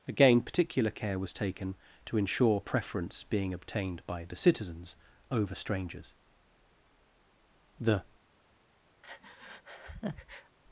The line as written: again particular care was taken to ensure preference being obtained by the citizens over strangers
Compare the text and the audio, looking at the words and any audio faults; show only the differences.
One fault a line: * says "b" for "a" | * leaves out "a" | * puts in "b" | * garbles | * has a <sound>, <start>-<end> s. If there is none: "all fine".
* puts in "the"
* has a breath, 9.0-10.6 s